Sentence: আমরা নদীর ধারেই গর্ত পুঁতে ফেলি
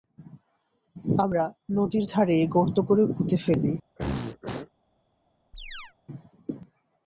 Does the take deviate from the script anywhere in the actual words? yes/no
yes